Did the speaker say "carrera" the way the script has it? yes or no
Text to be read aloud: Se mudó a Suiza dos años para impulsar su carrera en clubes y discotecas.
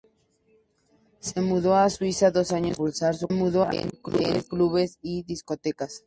no